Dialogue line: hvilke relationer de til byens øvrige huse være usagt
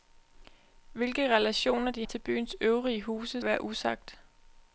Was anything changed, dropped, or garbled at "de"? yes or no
no